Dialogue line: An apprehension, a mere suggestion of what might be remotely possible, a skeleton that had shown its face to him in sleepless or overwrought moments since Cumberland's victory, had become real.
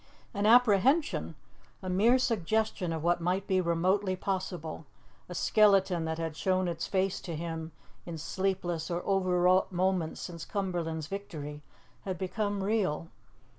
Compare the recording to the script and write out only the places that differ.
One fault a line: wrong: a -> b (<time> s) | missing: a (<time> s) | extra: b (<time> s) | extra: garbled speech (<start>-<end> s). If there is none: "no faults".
no faults